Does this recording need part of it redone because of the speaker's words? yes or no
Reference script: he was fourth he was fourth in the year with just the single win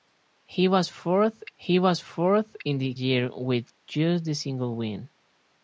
no